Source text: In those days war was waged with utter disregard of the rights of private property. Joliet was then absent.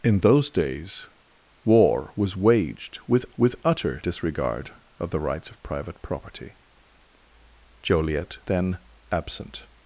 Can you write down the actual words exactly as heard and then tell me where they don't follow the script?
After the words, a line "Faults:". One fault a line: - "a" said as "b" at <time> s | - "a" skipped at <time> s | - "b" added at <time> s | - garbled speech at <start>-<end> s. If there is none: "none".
In those days war was waged with with utter disregard of the rights of private property. Joliet then absent.
Faults:
- "with" added at 3.4 s
- "was" skipped at 8.4 s